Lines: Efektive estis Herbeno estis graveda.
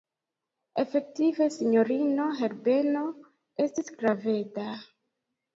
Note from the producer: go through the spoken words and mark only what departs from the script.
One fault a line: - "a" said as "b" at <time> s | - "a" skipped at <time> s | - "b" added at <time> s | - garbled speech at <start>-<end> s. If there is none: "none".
- "estis" said as "sinjorino" at 1.6 s